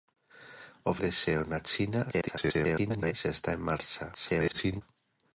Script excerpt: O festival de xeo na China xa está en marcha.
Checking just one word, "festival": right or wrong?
wrong